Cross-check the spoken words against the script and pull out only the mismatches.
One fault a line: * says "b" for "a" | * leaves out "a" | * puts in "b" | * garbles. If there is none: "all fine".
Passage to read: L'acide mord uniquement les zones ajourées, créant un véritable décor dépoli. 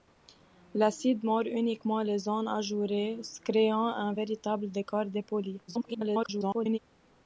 * garbles